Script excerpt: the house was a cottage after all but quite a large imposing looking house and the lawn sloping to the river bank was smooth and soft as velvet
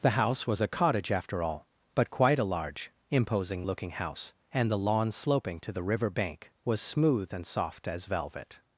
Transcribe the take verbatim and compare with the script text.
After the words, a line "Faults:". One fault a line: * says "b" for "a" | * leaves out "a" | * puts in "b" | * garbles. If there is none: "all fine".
the house was a cottage after all but quite a large imposing looking house and the lawn sloping to the river bank was smooth and soft as velvet
Faults:
all fine